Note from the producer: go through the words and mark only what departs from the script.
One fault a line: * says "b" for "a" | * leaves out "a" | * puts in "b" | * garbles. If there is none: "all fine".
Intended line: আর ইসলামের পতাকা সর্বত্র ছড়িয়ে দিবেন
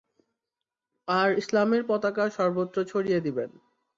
all fine